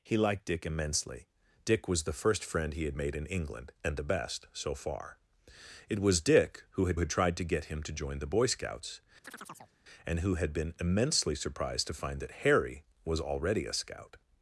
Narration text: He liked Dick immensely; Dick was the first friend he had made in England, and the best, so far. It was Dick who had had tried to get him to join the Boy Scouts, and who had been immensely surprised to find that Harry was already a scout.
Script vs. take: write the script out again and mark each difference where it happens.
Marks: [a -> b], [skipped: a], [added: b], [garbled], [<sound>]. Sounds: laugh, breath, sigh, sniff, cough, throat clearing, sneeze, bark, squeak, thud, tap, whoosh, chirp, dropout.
He liked Dick immensely; Dick was the first friend he had made in England, and the best, so far. It was Dick who had had tried to get him to join the Boy Scouts, [chirp] and who had been immensely surprised to find that Harry was already a scout.